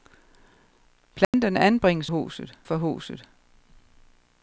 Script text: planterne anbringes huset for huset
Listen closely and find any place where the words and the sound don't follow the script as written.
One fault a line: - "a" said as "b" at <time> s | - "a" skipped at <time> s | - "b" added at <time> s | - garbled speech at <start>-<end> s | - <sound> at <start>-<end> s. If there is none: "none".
- dropout at 1.2-1.3 s